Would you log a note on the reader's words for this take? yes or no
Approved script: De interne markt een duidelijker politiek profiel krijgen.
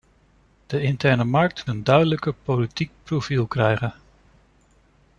no